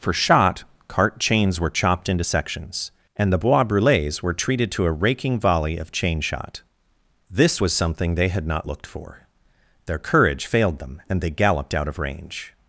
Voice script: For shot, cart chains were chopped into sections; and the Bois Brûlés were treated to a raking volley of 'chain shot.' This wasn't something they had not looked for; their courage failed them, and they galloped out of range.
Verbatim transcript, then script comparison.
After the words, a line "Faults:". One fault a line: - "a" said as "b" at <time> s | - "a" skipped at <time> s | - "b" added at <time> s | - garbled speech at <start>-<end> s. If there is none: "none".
For shot, cart chains were chopped into sections; and the Bois Brûlés were treated to a raking volley of 'chain shot.' This was something they had not looked for; their courage failed them, and they galloped out of range.
Faults:
- "wasn't" said as "was" at 7.6 s